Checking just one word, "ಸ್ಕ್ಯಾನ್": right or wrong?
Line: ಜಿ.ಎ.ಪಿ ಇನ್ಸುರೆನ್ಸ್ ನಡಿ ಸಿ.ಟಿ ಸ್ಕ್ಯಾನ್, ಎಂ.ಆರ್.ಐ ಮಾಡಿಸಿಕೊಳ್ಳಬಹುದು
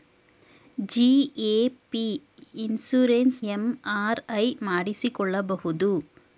wrong